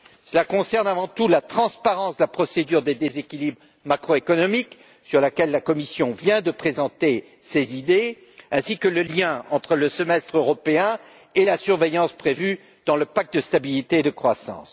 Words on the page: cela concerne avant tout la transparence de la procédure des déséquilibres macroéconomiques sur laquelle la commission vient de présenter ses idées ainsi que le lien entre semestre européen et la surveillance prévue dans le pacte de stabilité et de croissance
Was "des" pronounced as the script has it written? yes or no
yes